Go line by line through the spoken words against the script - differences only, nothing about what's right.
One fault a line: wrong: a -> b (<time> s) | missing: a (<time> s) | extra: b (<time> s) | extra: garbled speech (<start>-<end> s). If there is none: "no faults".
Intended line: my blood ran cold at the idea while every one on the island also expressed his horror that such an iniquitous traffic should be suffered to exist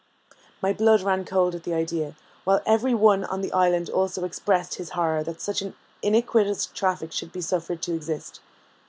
no faults